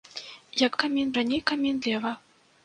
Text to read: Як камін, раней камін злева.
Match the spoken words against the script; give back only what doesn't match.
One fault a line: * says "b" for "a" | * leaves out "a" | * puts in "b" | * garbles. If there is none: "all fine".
all fine